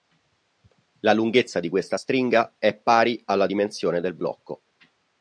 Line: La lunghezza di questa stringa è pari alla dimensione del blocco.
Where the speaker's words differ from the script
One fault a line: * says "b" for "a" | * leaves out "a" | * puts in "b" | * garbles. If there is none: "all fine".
all fine